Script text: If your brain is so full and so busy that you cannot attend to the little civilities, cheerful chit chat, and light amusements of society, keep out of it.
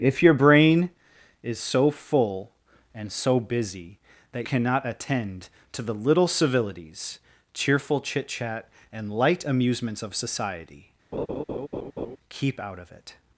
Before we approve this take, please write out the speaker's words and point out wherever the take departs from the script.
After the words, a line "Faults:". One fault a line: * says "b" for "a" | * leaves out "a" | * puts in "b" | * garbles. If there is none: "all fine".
If your brain is so full and so busy that cannot attend to the little civilities, cheerful chit chat, and light amusements of society, keep out of it.
Faults:
* leaves out "you"